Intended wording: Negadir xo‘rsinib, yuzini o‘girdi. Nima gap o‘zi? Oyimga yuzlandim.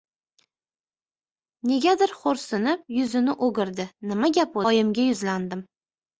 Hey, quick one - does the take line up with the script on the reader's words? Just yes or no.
no